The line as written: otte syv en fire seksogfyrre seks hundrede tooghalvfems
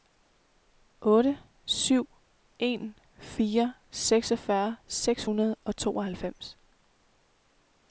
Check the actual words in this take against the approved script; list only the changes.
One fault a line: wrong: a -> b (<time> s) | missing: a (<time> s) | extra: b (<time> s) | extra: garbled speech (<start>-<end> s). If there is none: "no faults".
extra: og (5.6 s)